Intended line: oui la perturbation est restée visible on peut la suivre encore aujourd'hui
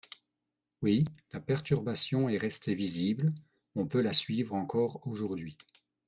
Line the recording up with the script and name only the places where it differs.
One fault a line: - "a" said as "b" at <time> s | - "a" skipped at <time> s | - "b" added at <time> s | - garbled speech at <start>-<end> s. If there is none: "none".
none